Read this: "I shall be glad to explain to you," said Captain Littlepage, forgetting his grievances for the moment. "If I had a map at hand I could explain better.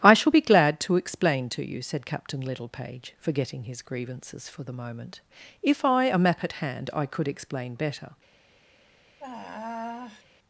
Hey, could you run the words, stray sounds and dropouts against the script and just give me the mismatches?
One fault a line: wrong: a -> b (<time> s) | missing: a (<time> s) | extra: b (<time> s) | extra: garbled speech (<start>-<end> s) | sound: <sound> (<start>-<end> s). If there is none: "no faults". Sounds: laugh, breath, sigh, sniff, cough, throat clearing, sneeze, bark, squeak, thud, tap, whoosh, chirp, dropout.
missing: had (6.0 s)
sound: sigh (9.2-10.2 s)